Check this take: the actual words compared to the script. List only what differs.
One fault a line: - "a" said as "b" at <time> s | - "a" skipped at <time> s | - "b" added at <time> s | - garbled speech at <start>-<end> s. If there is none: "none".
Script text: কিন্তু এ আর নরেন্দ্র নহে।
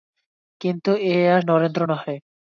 none